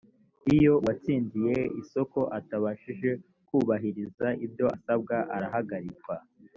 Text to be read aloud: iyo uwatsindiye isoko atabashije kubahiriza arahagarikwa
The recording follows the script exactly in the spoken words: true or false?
false